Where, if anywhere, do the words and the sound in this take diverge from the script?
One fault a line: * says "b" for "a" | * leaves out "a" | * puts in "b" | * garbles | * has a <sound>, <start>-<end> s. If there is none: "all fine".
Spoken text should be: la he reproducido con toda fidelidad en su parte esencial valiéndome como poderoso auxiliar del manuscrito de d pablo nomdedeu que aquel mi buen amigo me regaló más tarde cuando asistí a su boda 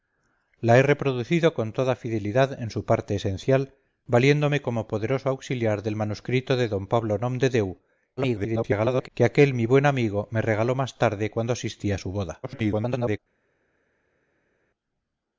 * garbles
* garbles